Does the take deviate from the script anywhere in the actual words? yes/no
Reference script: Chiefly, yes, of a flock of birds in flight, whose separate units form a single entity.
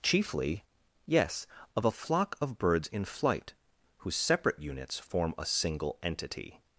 no